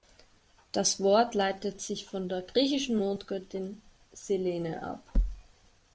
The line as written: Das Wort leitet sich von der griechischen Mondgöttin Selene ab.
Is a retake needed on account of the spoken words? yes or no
no